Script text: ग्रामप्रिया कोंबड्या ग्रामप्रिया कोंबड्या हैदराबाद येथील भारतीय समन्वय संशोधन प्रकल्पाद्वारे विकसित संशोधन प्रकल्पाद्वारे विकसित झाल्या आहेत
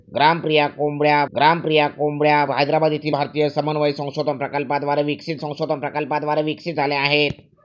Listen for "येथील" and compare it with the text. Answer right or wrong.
right